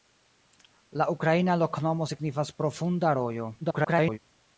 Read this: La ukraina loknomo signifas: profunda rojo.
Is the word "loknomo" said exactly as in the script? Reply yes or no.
yes